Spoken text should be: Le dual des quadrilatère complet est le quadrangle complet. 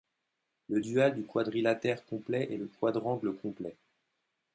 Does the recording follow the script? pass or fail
fail